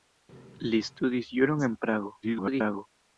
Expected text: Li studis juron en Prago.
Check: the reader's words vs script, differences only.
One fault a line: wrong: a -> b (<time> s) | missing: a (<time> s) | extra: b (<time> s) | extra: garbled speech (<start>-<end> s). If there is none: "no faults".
extra: garbled speech (2.2-2.9 s)